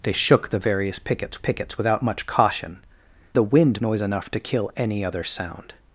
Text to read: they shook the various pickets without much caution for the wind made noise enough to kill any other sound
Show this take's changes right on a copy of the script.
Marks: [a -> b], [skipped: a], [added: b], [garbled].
they shook the various pickets [added: pickets] without much caution [skipped: for] the wind [skipped: made] noise enough to kill any other sound